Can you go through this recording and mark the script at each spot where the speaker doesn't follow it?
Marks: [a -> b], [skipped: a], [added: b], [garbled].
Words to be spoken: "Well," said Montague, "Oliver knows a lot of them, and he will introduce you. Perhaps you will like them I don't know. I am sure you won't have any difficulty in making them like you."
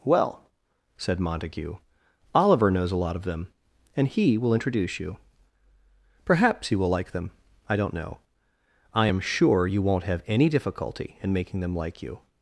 "Well," said Montague, "Oliver knows a lot of them, and he will introduce you. Perhaps you will like them I don't know. I am sure you won't have any difficulty in making them like you."